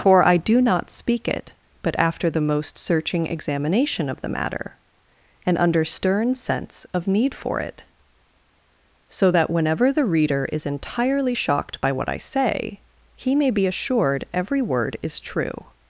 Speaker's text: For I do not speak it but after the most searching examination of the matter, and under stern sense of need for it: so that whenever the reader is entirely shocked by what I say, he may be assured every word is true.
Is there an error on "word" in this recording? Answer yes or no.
no